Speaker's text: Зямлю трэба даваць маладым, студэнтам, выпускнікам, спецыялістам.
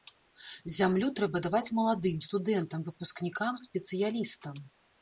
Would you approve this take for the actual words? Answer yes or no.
yes